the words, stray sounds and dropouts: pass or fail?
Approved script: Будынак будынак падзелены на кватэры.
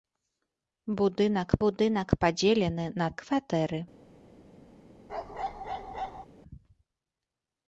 fail